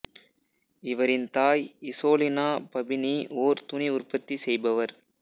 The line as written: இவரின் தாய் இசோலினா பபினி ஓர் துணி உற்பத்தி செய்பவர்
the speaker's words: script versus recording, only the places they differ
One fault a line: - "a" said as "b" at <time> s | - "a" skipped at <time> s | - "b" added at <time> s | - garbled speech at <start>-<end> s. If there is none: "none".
none